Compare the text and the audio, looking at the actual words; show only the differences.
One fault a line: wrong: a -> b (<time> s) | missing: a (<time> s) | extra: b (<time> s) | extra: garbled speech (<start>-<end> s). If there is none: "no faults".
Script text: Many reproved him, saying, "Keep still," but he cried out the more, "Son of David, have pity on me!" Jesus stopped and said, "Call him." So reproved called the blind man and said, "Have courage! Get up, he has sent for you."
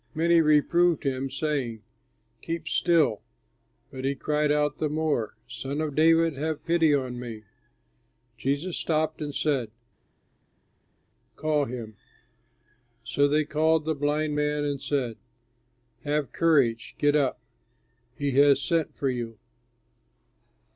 wrong: reproved -> they (13.3 s)